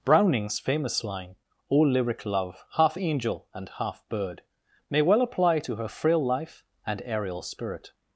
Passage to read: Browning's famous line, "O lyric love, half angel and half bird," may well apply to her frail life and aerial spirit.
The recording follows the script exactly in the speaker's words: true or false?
true